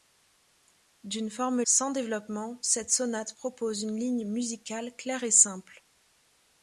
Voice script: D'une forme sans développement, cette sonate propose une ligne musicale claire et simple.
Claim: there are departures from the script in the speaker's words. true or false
false